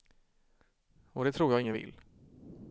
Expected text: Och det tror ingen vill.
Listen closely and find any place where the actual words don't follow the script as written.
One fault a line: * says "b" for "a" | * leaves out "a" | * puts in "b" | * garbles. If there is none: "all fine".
* puts in "jag"